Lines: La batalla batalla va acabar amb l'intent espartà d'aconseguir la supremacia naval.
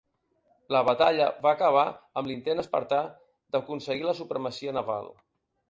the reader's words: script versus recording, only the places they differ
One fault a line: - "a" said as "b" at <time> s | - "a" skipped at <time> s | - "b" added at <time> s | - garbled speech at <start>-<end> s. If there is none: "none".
- "batalla" skipped at 1.3 s